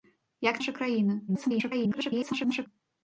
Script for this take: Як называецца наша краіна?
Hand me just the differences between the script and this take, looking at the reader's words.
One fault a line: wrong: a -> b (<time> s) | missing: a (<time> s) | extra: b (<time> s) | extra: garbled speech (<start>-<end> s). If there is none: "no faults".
missing: называецца (0.6 s)
extra: garbled speech (1.3-2.7 s)